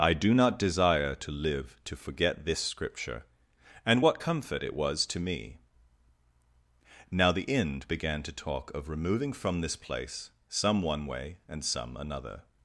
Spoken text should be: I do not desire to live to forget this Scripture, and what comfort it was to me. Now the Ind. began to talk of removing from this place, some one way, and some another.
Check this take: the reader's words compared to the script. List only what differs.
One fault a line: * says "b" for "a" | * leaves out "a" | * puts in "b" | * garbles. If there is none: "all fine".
all fine